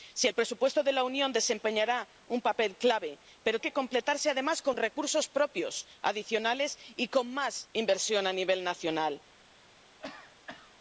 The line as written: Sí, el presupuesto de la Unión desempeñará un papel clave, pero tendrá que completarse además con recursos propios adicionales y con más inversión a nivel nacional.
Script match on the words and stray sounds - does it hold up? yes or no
no